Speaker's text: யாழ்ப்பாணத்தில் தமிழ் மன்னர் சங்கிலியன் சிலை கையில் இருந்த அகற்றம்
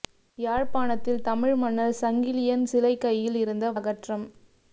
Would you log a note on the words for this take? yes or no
no